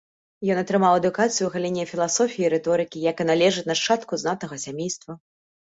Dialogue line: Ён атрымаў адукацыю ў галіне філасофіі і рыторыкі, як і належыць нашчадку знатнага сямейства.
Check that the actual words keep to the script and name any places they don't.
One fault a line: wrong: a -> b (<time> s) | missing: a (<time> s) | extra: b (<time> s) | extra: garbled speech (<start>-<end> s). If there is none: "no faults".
no faults